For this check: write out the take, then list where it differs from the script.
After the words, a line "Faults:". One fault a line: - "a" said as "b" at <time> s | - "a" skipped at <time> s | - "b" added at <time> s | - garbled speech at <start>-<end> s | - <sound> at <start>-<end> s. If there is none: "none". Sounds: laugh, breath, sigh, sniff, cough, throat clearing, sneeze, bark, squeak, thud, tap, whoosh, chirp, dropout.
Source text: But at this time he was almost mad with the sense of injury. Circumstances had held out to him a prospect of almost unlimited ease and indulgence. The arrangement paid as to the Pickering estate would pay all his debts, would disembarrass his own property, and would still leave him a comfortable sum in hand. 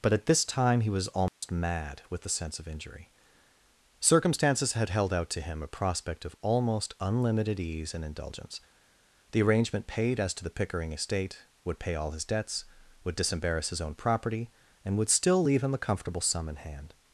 But at this time he was almost mad with the sense of injury. Circumstances had held out to him a prospect of almost unlimited ease and indulgence. The arrangement paid as to the Pickering estate would pay all his debts, would disembarrass his own property, and would still leave him a comfortable sum in hand.
Faults:
- dropout at 1.3-1.4 s